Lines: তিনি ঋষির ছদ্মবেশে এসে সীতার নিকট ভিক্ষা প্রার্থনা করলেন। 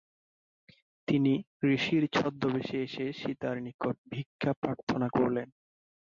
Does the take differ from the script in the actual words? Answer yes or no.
no